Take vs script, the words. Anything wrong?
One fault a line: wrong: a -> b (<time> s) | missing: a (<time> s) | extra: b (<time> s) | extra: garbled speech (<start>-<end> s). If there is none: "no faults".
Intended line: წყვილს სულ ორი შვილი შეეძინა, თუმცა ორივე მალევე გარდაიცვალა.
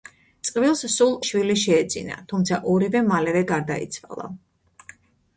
missing: ორი (1.1 s)